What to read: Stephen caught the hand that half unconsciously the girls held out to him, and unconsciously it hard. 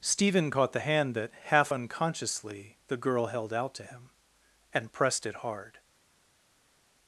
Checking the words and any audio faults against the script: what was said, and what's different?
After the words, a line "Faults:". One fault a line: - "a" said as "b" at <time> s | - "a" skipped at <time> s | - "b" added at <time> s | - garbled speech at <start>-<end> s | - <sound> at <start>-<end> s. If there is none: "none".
Stephen caught the hand that half unconsciously the girl held out to him, and pressed it hard.
Faults:
- "girls" said as "girl" at 3.0 s
- "unconsciously" said as "pressed" at 4.9 s